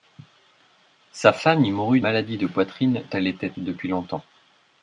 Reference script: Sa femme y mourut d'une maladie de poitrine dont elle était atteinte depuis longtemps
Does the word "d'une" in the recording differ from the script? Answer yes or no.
yes